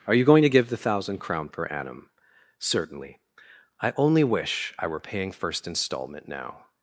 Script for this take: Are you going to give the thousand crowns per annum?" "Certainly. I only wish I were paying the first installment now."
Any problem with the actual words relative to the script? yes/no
yes